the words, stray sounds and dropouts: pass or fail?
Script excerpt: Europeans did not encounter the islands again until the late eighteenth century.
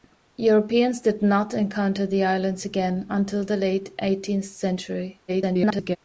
fail